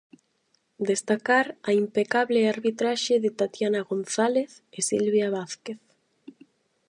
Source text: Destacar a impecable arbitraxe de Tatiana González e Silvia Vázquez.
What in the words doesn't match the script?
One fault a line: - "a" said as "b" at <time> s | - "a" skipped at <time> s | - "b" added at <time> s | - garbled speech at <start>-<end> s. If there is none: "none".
none